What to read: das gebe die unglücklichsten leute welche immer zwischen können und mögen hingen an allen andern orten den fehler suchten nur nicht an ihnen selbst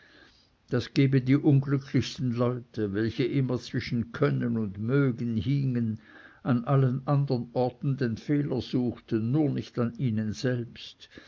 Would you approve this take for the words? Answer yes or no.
yes